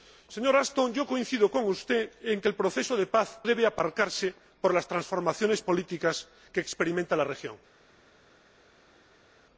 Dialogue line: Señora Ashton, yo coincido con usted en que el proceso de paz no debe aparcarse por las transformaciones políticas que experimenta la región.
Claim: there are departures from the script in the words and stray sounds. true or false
true